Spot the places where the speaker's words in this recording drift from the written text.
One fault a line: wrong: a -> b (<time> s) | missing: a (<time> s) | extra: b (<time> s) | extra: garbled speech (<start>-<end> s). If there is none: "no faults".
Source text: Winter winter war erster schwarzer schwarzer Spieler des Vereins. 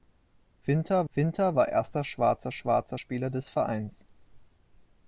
no faults